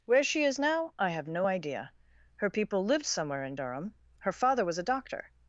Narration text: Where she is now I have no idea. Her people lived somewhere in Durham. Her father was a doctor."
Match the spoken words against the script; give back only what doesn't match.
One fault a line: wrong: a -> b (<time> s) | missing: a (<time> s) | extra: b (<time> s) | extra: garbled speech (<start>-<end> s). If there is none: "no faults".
no faults